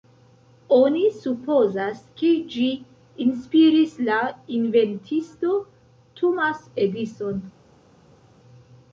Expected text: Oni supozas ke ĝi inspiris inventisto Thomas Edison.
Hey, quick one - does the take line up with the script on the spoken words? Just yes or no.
no